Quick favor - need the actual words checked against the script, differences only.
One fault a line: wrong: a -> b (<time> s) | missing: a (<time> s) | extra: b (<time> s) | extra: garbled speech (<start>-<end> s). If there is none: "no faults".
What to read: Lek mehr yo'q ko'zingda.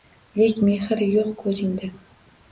no faults